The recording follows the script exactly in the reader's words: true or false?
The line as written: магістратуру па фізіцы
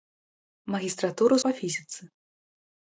true